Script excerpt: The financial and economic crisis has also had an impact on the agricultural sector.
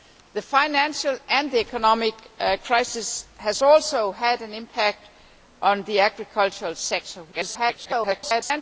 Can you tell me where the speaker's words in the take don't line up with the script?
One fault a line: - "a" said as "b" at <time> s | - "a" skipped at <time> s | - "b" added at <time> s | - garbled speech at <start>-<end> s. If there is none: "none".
- garbled speech at 7.3-8.6 s